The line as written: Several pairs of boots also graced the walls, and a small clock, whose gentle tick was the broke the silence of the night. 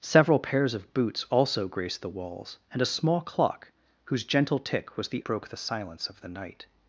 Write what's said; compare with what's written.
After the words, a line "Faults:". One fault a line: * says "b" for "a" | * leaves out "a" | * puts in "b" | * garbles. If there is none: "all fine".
Several pairs of boots also graced the walls, and a small clock, whose gentle tick was the broke the silence of the night.
Faults:
all fine